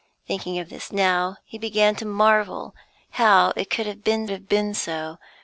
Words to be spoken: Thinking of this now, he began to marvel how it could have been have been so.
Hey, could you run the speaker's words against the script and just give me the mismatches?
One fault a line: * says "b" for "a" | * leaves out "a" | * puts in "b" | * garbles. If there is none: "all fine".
all fine